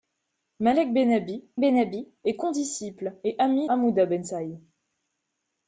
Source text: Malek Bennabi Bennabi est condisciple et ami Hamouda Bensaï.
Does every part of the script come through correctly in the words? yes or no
yes